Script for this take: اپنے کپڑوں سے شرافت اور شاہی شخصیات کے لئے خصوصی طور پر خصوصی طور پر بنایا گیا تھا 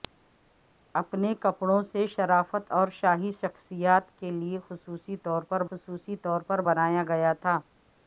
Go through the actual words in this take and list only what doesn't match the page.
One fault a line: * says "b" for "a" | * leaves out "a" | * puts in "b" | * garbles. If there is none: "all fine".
all fine